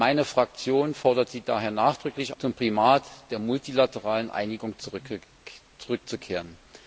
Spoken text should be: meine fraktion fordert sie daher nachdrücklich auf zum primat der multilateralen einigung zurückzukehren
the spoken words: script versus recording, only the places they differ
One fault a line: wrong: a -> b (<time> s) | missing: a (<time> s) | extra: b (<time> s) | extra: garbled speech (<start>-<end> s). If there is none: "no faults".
missing: auf (2.3 s)